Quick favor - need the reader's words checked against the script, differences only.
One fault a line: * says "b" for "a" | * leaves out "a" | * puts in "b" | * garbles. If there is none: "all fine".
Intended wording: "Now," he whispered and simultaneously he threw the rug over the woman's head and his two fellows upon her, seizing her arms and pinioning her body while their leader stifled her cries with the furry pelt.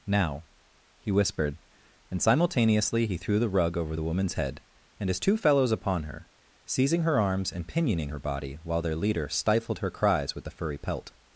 all fine